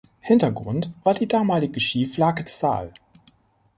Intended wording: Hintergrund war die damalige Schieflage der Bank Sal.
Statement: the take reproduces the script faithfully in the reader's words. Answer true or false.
false